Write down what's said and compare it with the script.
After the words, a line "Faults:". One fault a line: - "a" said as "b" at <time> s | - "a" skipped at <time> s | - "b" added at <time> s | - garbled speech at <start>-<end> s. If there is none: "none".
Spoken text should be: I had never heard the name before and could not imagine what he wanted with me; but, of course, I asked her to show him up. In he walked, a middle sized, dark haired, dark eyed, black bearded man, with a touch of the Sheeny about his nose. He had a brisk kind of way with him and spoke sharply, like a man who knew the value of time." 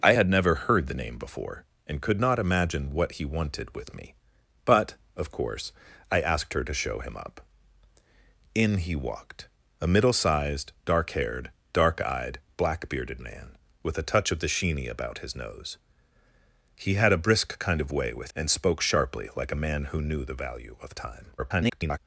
I had never heard the name before and could not imagine what he wanted with me; but, of course, I asked her to show him up. In he walked, a middle sized, dark haired, dark eyed, black bearded man, with a touch of the Sheeny about his nose. He had a brisk kind of way with and spoke sharply, like a man who knew the value of time." [garbled]
Faults:
- "him" skipped at 18.3 s
- garbled speech at 21.4-22.0 s